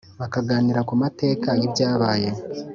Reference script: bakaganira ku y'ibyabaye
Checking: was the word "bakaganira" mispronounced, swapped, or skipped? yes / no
no